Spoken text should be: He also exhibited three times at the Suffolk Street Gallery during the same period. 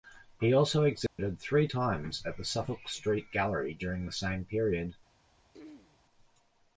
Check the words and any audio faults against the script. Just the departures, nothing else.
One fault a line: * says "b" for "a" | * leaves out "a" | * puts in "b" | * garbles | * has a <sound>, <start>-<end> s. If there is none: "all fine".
* has a dropout, 1.1-1.2 s
* has a throat clearing, 5.5-6.0 s